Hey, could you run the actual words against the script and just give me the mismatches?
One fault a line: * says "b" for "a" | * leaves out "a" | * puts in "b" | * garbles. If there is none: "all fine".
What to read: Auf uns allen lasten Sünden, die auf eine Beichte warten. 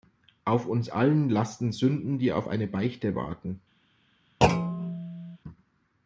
all fine